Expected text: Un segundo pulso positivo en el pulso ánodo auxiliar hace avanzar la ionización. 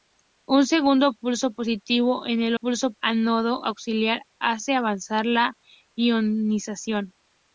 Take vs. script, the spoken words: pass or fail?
pass